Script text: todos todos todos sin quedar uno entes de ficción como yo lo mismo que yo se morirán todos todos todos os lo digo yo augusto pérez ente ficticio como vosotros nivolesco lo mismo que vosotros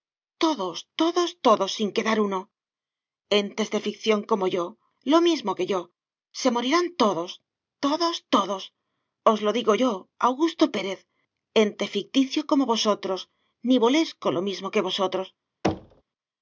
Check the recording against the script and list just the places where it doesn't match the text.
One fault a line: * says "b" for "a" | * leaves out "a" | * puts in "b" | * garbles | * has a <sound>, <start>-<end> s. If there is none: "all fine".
* has a thud, 15.6-16.0 s